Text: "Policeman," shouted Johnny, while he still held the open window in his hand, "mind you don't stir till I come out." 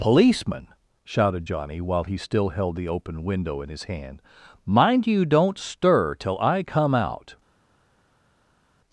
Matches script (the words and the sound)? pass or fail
pass